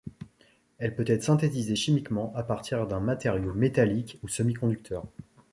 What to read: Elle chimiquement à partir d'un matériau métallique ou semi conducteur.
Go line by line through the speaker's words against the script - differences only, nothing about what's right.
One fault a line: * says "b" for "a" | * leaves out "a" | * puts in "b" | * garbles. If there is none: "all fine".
* puts in "peut être synthétisée"